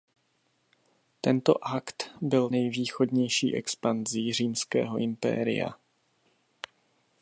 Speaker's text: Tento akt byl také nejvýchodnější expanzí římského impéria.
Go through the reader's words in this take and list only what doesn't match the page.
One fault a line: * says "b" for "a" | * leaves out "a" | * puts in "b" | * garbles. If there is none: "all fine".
* leaves out "také"